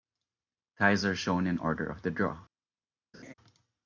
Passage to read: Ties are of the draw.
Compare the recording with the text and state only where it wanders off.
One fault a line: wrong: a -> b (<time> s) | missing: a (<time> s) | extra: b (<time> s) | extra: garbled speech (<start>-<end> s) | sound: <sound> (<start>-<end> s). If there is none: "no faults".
extra: shown in order (1.1 s)
sound: laugh (3.1-3.3 s)